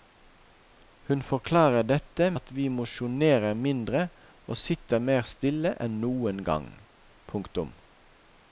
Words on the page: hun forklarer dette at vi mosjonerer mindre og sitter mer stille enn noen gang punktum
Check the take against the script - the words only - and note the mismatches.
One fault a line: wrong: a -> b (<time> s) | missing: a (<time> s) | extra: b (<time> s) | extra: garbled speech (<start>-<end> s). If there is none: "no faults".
no faults